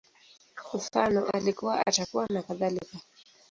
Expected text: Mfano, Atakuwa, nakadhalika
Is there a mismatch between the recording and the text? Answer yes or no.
yes